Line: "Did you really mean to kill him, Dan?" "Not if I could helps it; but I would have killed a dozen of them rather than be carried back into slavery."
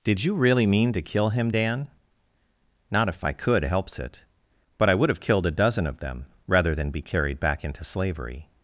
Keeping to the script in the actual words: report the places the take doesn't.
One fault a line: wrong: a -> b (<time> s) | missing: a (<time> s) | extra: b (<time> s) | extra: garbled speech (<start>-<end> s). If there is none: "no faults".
no faults